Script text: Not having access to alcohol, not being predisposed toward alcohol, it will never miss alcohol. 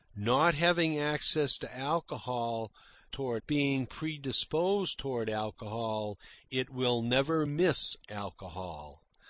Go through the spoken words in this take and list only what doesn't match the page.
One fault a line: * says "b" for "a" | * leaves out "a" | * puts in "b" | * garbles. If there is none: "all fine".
* says "toward" for "not"